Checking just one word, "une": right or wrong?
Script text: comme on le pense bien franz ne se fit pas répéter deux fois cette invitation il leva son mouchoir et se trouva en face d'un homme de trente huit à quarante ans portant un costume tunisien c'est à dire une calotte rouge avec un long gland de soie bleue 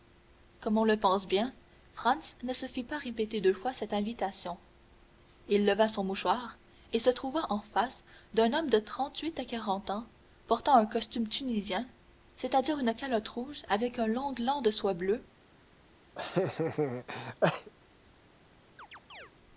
right